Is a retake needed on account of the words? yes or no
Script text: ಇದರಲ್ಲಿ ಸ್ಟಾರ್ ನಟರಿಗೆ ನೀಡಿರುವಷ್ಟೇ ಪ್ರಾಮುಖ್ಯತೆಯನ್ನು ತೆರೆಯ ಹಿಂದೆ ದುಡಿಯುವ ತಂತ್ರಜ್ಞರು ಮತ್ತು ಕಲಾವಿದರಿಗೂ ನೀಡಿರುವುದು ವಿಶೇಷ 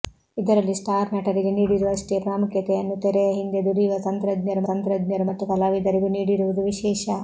yes